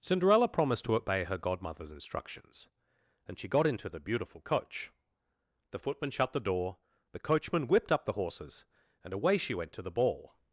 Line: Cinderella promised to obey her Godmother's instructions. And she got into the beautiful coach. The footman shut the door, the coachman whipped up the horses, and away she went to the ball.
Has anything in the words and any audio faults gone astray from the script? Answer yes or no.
no